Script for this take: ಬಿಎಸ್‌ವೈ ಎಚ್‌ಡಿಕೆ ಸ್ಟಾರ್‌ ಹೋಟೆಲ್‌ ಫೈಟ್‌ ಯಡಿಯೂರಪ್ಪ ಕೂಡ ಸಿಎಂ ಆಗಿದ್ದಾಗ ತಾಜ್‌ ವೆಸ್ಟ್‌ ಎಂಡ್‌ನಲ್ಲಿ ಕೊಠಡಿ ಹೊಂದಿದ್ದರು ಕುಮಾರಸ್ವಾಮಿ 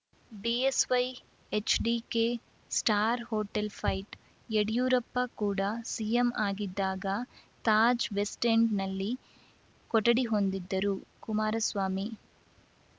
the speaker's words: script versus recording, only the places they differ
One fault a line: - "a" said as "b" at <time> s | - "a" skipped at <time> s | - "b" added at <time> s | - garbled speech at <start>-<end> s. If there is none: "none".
none